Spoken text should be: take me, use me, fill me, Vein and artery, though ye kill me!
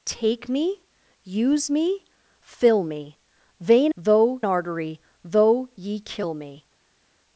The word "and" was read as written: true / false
false